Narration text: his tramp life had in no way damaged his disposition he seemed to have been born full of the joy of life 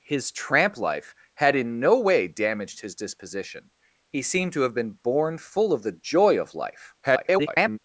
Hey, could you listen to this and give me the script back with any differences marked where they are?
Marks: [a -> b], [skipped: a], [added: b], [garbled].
his tramp life had in no way damaged his disposition he seemed to have been born full of the joy of life [garbled]